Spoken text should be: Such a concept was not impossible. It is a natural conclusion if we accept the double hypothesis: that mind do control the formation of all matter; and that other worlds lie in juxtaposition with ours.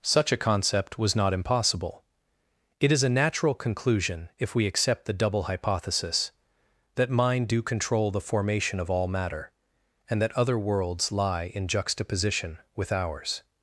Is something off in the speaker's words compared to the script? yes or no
no